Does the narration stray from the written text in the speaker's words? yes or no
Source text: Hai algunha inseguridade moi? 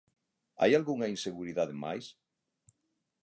yes